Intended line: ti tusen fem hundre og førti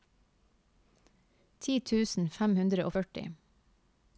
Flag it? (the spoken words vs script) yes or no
no